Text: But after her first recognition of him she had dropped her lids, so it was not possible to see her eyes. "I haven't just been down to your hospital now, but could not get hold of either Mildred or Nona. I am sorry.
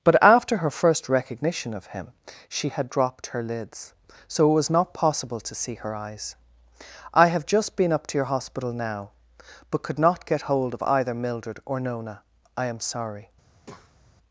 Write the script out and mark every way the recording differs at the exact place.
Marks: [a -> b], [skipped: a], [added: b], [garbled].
But after her first recognition of him she had dropped her lids, so it was not possible to see her eyes. "I [haven't -> have] just been [down -> up] to your hospital now, but could not get hold of either Mildred or Nona. I am sorry.